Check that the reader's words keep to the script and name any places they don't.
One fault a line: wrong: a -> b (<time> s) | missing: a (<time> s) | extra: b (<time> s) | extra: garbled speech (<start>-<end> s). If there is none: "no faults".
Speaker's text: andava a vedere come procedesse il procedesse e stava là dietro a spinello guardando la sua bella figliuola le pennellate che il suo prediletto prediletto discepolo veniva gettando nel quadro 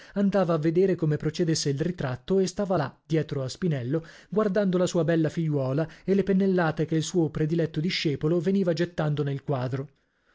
wrong: procedesse -> ritratto (1.8 s)
extra: e (6.0 s)
missing: prediletto (7.8 s)